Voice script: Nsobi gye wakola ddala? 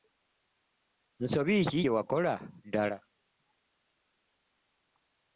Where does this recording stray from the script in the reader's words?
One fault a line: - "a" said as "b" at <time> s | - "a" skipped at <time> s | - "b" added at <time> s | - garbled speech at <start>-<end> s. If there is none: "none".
- "ki" added at 1.7 s